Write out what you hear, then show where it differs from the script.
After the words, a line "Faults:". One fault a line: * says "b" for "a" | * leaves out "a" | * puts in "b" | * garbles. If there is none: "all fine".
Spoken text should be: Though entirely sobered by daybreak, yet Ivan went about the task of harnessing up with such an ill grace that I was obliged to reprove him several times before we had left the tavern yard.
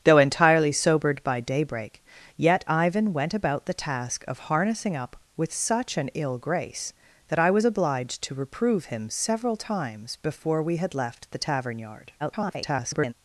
Though entirely sobered by daybreak, yet Ivan went about the task of harnessing up with such an ill grace that I was obliged to reprove him several times before we had left the tavern yard. [garbled]
Faults:
* garbles